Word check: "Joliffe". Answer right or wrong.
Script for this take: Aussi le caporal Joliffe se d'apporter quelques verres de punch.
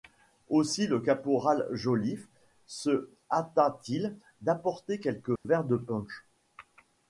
right